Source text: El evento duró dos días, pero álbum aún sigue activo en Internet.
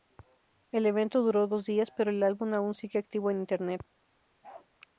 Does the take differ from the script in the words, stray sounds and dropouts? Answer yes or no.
yes